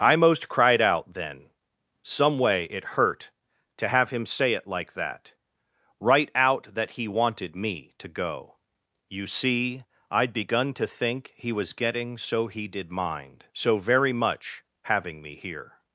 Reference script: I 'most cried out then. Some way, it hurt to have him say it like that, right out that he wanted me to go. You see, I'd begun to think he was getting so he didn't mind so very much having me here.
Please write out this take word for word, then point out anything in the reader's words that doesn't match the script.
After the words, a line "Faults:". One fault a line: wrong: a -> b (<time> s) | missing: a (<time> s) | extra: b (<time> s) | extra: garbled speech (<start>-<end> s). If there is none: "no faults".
I 'most cried out then. Some way, it hurt to have him say it like that, right out that he wanted me to go. You see, I'd begun to think he was getting so he did mind so very much having me here.
Faults:
wrong: didn't -> did (12.7 s)